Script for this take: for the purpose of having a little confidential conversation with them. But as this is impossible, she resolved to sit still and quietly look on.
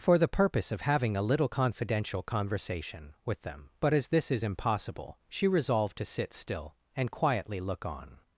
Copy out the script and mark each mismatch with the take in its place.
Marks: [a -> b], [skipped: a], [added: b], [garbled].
for the purpose of having a little confidential conversation with them. But as this is impossible, she resolved to sit still and quietly look on.